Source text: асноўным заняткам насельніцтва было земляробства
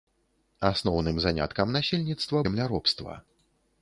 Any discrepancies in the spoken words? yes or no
yes